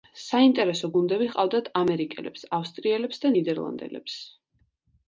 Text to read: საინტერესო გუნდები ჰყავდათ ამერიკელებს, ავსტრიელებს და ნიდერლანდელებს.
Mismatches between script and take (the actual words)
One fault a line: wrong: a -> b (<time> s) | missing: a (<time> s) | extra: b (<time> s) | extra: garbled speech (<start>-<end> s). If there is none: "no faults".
no faults